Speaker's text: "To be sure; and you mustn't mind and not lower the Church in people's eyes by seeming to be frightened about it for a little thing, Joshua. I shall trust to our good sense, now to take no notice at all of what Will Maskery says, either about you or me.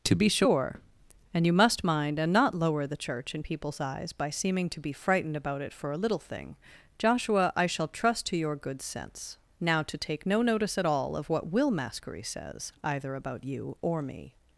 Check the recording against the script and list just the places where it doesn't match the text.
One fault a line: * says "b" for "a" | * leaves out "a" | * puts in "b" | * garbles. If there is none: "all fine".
* says "must" for "mustn't"
* says "your" for "our"